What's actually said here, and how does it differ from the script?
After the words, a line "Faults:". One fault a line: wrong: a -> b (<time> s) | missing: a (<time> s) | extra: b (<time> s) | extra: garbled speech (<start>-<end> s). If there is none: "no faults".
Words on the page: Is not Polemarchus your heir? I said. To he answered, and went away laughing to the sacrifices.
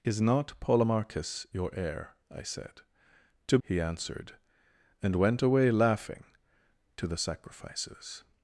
Is not Polemarchus your heir? I said. To he answered, and went away laughing to the sacrifices.
Faults:
no faults